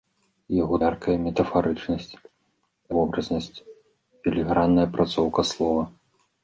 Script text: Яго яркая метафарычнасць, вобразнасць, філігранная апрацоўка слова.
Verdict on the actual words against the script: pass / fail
pass